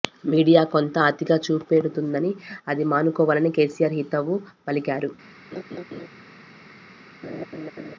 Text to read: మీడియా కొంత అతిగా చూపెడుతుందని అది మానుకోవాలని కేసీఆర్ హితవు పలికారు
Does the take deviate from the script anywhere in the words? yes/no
no